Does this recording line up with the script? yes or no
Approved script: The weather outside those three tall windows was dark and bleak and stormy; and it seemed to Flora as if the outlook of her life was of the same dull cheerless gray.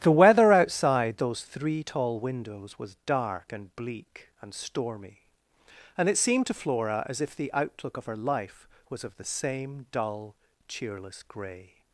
yes